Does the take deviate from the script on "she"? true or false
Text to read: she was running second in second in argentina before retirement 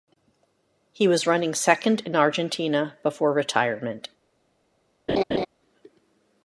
true